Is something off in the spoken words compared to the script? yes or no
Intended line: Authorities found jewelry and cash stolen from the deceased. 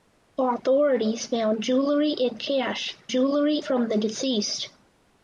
yes